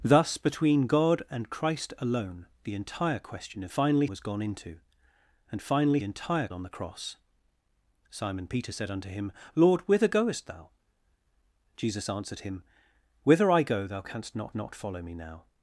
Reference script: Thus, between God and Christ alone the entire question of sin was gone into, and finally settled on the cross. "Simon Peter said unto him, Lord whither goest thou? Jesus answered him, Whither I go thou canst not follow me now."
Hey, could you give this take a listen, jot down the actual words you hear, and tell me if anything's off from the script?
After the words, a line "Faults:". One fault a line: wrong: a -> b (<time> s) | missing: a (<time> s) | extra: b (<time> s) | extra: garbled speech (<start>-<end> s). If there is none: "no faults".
Thus, between God and Christ alone the entire question of finally was gone into, and finally entire on the cross. "Simon Peter said unto him, Lord whither goest thou? Jesus answered him, Whither I go thou canst not not follow me now."
Faults:
wrong: sin -> finally (3.7 s)
wrong: settled -> entire (6.0 s)
extra: not (14.5 s)